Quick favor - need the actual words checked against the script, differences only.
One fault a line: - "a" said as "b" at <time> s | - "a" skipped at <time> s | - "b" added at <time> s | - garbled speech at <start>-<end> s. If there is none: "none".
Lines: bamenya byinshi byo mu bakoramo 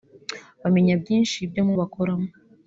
none